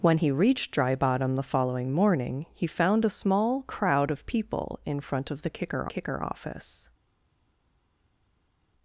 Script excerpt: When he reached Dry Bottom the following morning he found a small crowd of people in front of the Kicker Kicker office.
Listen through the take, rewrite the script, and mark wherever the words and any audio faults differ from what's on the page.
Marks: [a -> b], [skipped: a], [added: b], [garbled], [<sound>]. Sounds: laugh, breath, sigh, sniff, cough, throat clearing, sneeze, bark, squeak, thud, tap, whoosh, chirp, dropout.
When he reached Dry Bottom the following morning he found a small crowd of people in front of the Kicker Kicker office.